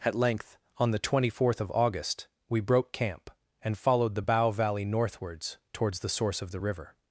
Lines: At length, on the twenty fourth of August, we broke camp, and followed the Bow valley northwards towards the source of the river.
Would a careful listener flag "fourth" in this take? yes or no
no